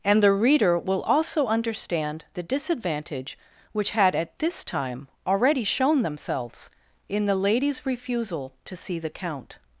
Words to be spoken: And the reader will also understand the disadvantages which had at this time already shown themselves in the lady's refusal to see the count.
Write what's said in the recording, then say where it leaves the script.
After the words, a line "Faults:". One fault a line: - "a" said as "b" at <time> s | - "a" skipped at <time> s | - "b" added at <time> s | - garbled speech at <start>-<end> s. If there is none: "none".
And the reader will also understand the disadvantage which had at this time already shown themselves in the lady's refusal to see the count.
Faults:
- "disadvantages" said as "disadvantage" at 2.4 s